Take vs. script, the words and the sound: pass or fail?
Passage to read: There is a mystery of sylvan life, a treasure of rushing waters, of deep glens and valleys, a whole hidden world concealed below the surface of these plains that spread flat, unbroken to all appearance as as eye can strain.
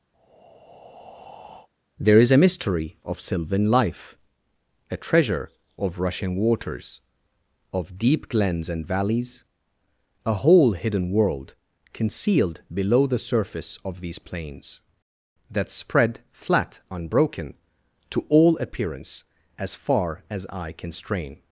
fail